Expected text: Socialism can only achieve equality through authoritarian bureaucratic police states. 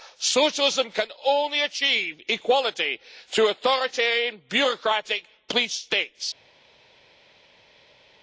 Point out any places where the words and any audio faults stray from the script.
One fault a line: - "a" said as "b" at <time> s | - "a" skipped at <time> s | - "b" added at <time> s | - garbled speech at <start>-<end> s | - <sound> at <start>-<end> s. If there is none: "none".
none